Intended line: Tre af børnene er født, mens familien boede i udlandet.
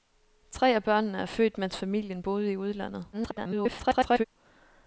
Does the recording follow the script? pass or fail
fail